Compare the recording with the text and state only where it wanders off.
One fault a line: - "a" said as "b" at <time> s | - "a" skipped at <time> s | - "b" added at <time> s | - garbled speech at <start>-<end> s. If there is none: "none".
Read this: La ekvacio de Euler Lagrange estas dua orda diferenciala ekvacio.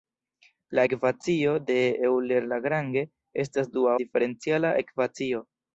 - "orda" skipped at 4.0 s